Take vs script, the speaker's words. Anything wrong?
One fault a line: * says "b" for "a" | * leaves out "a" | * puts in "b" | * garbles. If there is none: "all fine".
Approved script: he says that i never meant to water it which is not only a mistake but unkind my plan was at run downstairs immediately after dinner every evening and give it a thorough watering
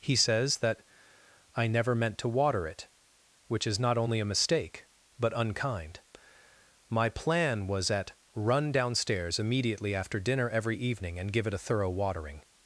all fine